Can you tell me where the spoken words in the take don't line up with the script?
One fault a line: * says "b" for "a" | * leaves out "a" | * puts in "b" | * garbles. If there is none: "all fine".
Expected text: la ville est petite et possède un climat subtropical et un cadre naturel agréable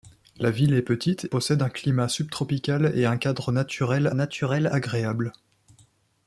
* leaves out "et"
* puts in "naturel"